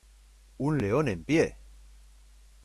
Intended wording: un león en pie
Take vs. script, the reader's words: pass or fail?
pass